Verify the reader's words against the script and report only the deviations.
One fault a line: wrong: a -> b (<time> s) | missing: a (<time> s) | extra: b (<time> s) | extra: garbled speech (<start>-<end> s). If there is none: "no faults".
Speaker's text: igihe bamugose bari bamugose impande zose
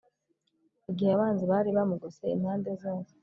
wrong: bamugose -> abanzi (1.1 s)